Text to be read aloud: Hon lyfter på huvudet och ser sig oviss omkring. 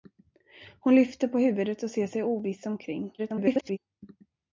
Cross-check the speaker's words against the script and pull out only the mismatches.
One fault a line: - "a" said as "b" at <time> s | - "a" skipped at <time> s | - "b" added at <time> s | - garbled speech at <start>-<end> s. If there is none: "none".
- garbled speech at 3.2-3.8 s